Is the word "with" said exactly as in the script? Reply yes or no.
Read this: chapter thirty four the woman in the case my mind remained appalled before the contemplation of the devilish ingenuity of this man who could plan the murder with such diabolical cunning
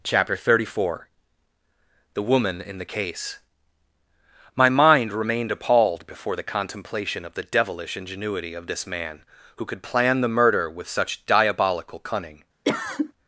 yes